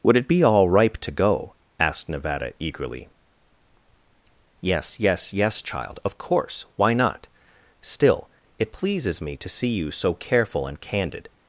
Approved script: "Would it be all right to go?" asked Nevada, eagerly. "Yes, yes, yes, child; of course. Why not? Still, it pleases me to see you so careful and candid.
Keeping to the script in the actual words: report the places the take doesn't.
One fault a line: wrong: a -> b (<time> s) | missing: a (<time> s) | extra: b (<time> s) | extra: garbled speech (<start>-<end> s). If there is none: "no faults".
wrong: right -> ripe (0.7 s)